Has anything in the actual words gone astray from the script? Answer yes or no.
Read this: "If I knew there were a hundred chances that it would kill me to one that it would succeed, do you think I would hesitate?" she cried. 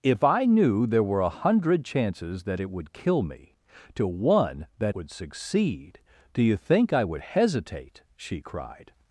yes